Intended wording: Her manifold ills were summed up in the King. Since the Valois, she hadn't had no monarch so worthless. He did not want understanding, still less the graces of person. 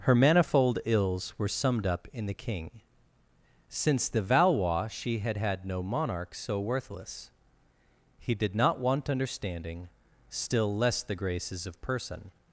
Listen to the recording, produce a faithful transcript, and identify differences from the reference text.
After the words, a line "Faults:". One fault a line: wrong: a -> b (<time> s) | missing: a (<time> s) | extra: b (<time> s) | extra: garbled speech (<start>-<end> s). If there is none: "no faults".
Her manifold ills were summed up in the King. Since the Valois, she had had no monarch so worthless. He did not want understanding, still less the graces of person.
Faults:
wrong: hadn't -> had (5.2 s)